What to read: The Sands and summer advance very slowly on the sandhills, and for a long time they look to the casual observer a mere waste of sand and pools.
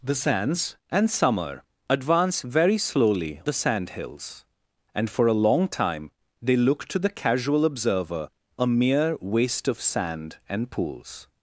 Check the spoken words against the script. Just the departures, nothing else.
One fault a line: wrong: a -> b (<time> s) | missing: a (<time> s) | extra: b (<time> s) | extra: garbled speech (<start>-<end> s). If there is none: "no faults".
missing: on (3.4 s)